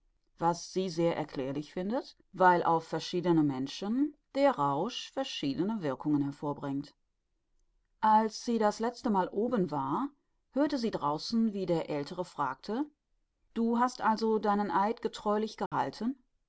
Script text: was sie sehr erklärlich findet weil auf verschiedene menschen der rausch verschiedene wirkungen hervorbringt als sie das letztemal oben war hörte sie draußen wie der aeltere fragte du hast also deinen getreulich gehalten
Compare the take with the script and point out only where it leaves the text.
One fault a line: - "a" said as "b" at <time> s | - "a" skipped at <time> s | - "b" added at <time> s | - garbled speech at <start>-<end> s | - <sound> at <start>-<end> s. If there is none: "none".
- "eid" added at 14.7 s
- dropout at 15.7-15.7 s